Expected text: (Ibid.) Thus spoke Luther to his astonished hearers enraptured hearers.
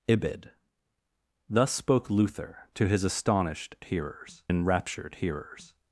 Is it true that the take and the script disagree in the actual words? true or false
false